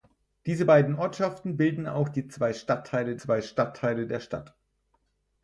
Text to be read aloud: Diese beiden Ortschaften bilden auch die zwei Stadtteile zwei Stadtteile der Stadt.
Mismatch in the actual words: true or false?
false